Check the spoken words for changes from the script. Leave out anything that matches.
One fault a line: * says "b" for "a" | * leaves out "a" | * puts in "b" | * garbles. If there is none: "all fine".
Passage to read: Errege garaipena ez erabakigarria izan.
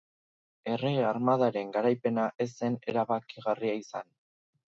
* puts in "armadaren"
* puts in "zen"